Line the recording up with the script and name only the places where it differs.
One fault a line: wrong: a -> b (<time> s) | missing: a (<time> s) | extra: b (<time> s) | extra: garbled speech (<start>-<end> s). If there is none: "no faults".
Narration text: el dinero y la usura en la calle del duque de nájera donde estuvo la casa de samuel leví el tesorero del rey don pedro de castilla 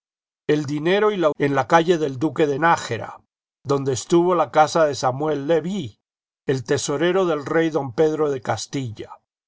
missing: usura (1.3 s)